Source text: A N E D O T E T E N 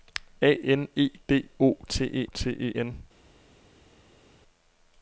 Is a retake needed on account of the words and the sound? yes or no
no